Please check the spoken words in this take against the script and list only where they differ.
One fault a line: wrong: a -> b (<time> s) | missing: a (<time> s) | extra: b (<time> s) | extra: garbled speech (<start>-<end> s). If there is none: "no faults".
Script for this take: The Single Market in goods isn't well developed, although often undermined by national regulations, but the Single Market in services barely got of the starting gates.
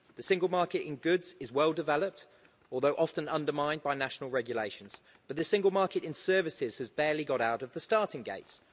wrong: isn't -> is (1.4 s)
extra: has (6.8 s)
extra: out (7.4 s)